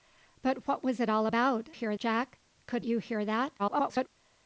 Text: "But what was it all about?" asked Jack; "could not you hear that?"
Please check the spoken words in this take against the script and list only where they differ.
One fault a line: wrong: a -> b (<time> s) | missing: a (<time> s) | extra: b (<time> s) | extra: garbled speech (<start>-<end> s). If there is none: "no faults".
wrong: asked -> hear (1.7 s)
missing: not (2.9 s)
extra: garbled speech (3.6-4.1 s)